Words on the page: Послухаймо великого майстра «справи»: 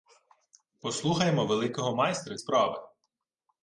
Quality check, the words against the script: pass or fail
pass